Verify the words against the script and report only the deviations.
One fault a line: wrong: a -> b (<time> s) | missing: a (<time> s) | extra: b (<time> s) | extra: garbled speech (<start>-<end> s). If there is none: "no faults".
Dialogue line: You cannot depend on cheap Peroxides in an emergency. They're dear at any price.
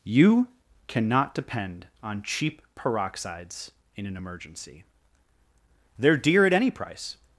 no faults